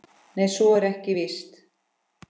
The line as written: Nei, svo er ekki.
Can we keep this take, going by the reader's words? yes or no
no